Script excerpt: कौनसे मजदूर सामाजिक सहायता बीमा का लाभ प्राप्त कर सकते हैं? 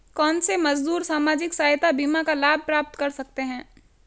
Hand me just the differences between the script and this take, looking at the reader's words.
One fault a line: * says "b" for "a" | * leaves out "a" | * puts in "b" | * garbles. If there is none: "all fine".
all fine